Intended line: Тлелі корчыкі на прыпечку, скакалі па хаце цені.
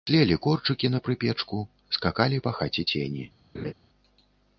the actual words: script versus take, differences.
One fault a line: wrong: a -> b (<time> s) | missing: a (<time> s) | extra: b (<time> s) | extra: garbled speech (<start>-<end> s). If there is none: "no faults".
no faults